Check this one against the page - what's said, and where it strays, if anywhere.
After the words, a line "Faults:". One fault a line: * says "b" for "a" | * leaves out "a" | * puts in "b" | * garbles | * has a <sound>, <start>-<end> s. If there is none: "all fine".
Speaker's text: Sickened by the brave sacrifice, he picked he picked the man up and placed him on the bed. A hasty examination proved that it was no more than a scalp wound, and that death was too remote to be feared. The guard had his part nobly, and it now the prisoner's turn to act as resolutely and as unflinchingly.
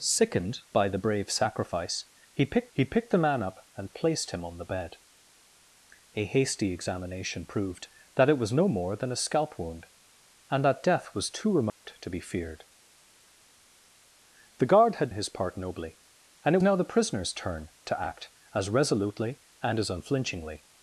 Sickened by the brave sacrifice, he picked he picked the man up and placed him on the bed. A hasty examination proved that it was no more than a scalp wound, and that death was too remote to be feared. The guard had his part nobly, and it now the prisoner's turn to act as resolutely and as unflinchingly.
Faults:
* has a dropout, 11.7-11.8 s